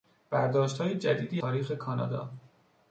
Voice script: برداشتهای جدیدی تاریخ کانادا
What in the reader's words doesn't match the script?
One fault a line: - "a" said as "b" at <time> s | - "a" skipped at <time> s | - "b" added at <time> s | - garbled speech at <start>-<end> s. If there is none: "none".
none